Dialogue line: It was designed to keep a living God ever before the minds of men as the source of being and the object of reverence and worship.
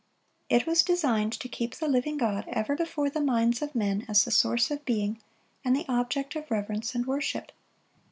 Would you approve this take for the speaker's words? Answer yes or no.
no